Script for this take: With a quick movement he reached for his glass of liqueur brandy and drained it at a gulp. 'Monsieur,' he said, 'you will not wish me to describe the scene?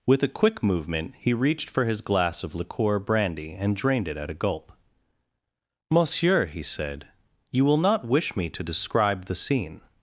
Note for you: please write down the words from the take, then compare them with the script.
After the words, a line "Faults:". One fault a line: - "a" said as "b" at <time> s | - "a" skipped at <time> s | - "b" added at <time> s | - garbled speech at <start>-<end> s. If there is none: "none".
With a quick movement he reached for his glass of liqueur brandy and drained it at a gulp. 'Monsieur,' he said, 'you will not wish me to describe the scene?
Faults:
none